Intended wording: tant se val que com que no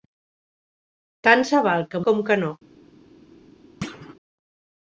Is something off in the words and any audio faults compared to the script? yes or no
yes